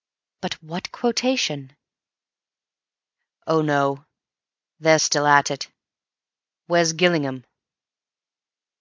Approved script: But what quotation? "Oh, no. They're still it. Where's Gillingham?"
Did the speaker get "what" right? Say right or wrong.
right